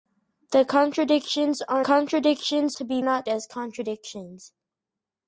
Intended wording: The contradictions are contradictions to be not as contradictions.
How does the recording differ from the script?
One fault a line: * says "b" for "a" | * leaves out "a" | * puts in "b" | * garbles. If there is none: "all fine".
all fine